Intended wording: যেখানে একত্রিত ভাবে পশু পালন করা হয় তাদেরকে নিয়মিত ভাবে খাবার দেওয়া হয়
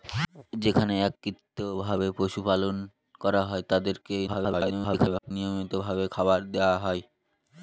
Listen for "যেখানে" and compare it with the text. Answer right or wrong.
right